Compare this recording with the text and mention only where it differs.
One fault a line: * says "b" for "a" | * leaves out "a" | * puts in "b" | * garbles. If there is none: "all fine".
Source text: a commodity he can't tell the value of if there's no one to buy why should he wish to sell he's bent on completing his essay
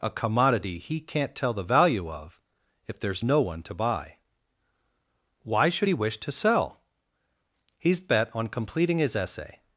* says "bet" for "bent"